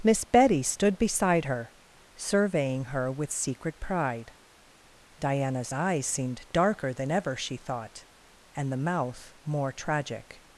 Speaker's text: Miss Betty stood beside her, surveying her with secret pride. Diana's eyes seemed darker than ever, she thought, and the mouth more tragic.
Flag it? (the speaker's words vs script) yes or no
no